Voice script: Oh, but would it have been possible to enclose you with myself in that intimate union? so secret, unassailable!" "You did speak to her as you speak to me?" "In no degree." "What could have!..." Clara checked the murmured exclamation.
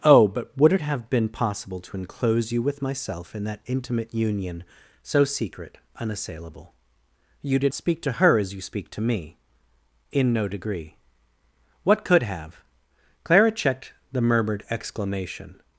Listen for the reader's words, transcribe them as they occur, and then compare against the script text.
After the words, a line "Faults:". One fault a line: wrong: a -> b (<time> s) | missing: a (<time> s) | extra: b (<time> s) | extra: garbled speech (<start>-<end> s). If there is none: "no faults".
Oh, but would it have been possible to enclose you with myself in that intimate union? so secret, unassailable!" "You did speak to her as you speak to me?" "In no degree." "What could have!..." Clara checked the murmured exclamation.
Faults:
no faults